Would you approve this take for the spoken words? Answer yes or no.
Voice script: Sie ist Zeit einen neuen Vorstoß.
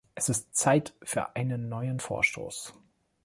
no